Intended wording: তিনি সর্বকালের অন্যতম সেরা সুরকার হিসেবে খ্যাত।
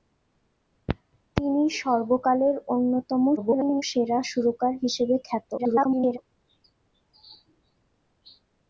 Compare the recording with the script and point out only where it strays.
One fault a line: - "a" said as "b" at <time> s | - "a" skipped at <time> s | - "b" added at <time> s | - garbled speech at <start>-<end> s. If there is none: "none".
- garbled speech at 3.4-3.8 s
- garbled speech at 5.6-6.2 s